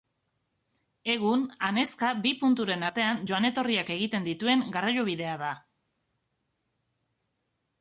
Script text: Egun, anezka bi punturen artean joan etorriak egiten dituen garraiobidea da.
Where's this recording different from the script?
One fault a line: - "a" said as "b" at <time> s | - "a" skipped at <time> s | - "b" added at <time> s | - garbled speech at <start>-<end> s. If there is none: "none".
none